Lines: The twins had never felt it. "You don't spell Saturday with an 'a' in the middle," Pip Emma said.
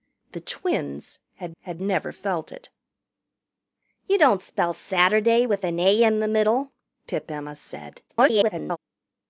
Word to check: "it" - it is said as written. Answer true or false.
true